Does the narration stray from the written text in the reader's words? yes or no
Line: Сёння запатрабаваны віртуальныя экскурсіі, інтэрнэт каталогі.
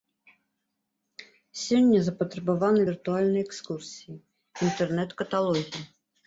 no